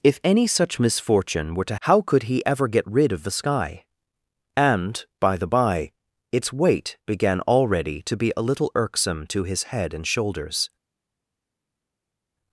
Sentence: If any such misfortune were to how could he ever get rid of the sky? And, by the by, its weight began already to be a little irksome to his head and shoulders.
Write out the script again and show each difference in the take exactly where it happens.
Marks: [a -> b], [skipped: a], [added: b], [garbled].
If any such misfortune were to how could he ever get rid of the sky? And, by the by, its weight began already to be a little irksome to his head and shoulders.